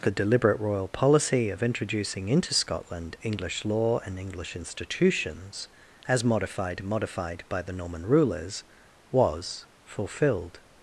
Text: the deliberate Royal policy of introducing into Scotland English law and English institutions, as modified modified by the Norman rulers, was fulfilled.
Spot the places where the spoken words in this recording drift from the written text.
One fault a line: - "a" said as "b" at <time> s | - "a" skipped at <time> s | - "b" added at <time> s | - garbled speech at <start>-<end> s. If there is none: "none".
none